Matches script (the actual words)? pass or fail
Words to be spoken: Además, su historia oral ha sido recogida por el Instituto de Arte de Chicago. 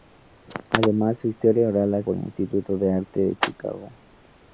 fail